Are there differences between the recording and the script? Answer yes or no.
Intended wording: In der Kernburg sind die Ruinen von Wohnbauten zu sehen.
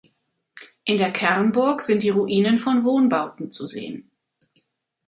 no